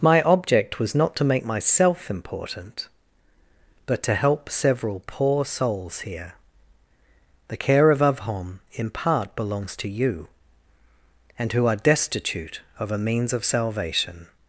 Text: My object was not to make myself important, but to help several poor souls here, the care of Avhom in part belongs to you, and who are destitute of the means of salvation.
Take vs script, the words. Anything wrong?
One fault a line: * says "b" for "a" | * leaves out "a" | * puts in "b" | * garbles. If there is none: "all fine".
* says "a" for "the"